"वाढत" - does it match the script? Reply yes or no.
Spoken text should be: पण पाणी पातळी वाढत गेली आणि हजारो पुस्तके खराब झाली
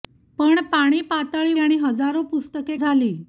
no